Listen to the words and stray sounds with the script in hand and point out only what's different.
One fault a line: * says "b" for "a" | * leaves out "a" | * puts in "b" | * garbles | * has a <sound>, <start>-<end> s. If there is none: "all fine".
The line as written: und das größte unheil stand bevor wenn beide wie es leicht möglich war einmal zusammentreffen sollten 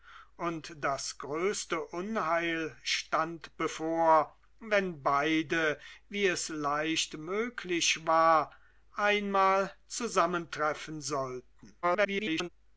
* garbles